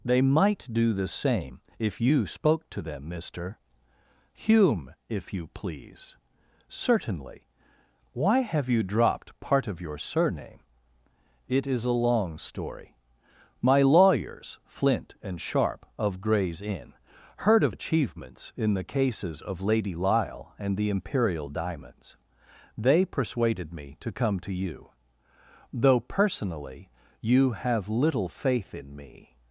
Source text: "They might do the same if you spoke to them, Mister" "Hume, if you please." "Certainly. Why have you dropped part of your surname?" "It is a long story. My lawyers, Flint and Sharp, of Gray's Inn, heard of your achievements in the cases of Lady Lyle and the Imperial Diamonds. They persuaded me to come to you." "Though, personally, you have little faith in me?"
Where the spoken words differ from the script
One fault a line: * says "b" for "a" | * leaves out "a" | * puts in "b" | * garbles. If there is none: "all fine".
* leaves out "your"